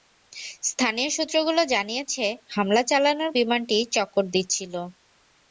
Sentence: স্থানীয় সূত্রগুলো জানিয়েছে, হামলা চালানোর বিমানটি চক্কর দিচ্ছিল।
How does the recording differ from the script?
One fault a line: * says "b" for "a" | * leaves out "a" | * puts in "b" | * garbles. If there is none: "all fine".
all fine